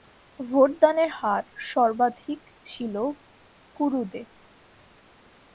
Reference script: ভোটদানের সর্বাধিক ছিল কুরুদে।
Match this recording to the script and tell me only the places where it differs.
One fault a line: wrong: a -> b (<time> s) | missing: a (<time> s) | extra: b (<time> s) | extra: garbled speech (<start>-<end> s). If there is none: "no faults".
extra: হার (1.2 s)